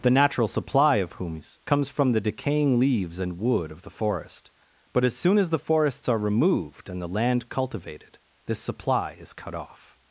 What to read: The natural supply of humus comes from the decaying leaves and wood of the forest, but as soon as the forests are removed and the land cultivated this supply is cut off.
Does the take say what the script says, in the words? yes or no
yes